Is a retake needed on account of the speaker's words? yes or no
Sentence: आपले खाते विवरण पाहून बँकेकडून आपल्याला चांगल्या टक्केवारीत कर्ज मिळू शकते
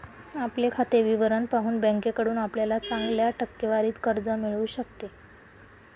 no